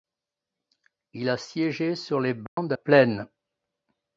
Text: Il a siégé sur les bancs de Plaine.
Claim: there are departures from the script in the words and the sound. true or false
true